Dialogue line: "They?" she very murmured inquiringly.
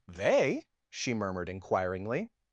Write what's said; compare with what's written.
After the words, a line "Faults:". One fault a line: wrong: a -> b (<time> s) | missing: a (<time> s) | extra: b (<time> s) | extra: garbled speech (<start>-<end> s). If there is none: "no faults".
"They?" she murmured inquiringly.
Faults:
missing: very (1.1 s)